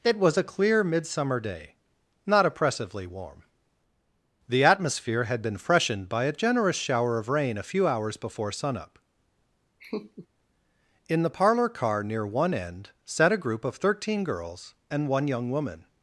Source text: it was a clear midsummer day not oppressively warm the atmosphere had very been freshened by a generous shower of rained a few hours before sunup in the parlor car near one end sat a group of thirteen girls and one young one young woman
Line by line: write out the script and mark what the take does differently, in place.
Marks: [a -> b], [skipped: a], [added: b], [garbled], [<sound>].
it was a clear midsummer day not oppressively warm the atmosphere had [skipped: very] been freshened by a generous shower of [rained -> rain] a few hours before sunup [laugh] in the parlor car near one end sat a group of thirteen girls and one young [skipped: one young] woman